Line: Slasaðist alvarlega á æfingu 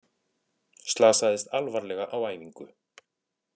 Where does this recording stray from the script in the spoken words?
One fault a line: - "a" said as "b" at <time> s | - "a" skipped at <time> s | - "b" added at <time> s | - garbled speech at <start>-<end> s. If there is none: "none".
none